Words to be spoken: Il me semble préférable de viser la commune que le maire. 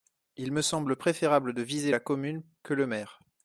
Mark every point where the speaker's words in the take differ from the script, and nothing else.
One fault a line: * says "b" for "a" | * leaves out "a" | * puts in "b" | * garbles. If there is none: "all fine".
all fine